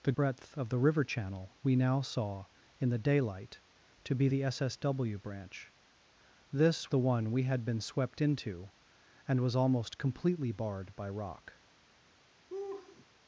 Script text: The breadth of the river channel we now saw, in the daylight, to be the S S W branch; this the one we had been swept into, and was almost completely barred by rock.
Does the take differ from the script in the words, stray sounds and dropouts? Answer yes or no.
yes